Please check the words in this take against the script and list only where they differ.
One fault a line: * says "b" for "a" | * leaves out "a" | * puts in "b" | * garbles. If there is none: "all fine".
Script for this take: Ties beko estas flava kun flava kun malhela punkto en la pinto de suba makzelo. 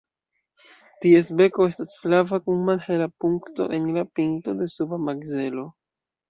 * leaves out "flava kun"